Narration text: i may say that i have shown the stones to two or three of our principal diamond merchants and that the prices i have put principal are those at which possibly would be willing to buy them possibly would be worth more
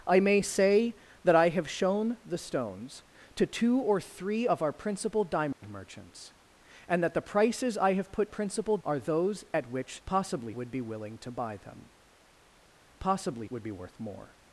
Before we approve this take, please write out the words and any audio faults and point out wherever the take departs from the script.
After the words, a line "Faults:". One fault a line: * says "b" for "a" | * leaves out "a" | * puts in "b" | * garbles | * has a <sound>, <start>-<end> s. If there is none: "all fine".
i may say that i have shown the stones to two or three of our principal diamond merchants and that the prices i have put principal are those at which possibly would be willing to buy them possibly would be worth more
Faults:
* has a dropout, 5.5-5.6 s